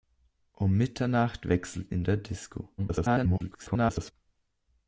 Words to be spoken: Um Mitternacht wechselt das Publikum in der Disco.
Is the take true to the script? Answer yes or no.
no